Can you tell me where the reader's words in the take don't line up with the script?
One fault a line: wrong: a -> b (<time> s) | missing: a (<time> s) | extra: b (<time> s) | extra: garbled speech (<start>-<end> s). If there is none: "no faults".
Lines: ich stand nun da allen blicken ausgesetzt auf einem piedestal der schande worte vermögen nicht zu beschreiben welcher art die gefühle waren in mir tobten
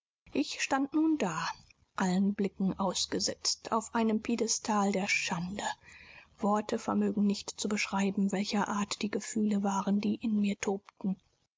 extra: die (10.0 s)